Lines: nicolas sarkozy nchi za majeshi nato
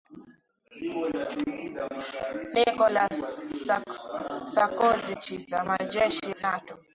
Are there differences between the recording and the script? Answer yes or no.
no